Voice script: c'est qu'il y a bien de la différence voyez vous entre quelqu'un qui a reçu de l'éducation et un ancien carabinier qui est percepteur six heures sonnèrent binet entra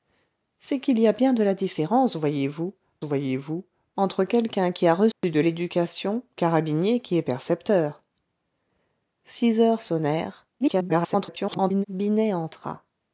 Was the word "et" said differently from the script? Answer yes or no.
yes